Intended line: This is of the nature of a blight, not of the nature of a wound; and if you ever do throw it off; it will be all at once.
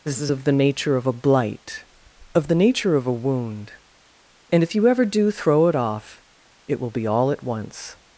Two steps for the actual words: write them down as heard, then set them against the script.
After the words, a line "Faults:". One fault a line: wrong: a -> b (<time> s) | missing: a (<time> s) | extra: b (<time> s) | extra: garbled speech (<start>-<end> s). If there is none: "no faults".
This is of the nature of a blight, of the nature of a wound; and if you ever do throw it off; it will be all at once.
Faults:
missing: not (1.8 s)